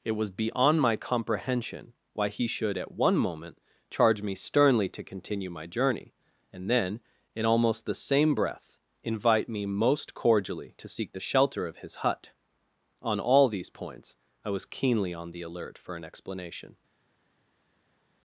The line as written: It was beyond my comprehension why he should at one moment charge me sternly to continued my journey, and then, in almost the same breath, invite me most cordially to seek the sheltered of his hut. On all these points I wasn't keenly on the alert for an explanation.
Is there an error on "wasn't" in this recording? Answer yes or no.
yes